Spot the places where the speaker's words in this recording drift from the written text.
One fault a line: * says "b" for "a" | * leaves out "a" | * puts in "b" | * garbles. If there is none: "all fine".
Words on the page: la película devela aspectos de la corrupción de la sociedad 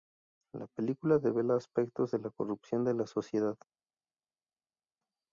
all fine